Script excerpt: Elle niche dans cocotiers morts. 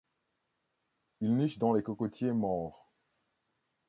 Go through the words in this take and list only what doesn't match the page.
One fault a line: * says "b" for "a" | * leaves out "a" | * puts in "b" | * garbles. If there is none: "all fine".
* says "Il" for "Elle"
* puts in "les"